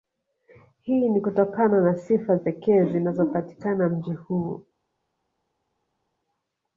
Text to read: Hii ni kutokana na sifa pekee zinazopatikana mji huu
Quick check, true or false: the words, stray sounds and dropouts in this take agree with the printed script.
true